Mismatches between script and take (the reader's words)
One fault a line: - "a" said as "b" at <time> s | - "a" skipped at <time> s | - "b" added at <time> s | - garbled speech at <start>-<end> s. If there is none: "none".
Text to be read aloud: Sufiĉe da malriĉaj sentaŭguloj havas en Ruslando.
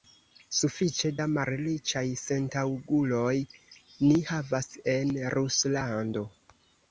- "ni" added at 4.0 s